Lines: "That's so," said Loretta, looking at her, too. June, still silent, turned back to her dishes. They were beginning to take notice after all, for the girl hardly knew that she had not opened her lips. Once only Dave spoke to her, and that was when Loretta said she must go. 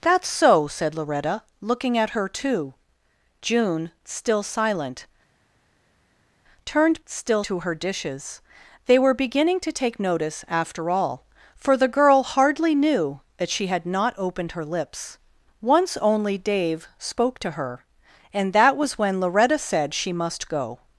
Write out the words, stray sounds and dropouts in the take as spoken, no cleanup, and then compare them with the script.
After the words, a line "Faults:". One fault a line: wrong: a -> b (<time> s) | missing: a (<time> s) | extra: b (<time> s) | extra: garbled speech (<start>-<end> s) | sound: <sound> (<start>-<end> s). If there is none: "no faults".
"That's so," said Loretta, looking at her, too. June, still silent, turned still to her dishes. They were beginning to take notice after all, for the girl hardly knew that she had not opened her lips. Once only Dave spoke to her, and that was when Loretta said she must go.
Faults:
wrong: back -> still (7.0 s)